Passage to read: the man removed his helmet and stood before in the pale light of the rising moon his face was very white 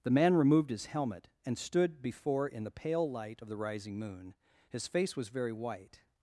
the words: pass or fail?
pass